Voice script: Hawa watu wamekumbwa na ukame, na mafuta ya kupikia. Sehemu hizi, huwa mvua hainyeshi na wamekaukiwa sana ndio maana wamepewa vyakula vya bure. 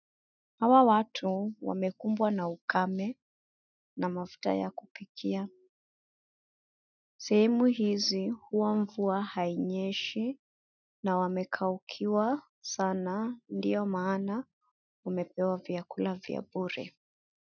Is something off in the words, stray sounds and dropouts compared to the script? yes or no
no